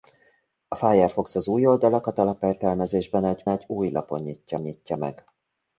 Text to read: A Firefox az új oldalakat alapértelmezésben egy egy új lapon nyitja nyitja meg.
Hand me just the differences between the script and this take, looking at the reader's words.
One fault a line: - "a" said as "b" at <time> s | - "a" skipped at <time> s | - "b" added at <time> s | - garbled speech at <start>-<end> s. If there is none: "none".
none